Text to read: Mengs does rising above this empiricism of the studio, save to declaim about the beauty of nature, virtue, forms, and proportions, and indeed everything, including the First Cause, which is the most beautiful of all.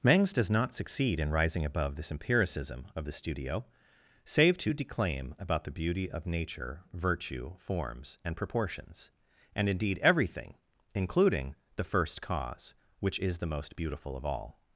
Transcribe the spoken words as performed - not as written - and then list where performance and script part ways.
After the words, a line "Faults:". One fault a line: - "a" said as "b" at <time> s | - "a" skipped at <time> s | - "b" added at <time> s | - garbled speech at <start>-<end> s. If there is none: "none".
Mengs does not succeed in rising above this empiricism of the studio, save to declaim about the beauty of nature, virtue, forms, and proportions, and indeed everything, including the First Cause, which is the most beautiful of all.
Faults:
- "not succeed in" added at 0.5 s